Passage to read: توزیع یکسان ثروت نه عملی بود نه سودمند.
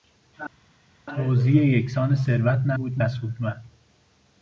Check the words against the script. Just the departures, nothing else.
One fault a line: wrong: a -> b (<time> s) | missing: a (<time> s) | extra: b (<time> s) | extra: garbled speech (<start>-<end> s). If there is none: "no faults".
missing: عملی (2.7 s)